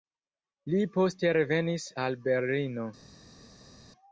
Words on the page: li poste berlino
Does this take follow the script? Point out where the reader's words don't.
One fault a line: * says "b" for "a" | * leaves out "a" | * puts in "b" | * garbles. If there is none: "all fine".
* puts in "revenis al"